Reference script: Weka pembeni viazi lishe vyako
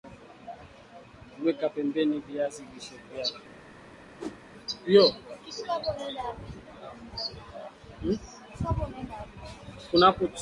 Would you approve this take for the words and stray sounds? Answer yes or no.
no